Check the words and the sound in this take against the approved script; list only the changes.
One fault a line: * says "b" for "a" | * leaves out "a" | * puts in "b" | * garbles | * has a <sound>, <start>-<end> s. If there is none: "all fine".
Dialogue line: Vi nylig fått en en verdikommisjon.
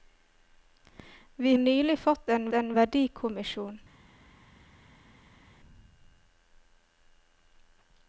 all fine